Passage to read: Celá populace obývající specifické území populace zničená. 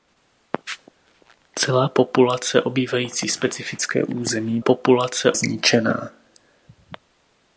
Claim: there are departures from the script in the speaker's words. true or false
false